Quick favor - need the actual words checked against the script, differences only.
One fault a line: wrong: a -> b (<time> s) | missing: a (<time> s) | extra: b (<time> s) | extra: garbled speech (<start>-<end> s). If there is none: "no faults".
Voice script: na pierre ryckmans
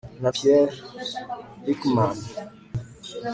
no faults